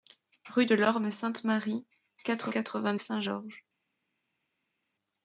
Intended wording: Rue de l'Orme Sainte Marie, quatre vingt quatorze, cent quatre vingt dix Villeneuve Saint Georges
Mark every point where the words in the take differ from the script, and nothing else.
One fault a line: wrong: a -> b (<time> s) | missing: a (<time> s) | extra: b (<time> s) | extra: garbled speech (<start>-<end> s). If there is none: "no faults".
missing: vingt quatorze cent (2.5 s)
missing: dix Villeneuve (3.0 s)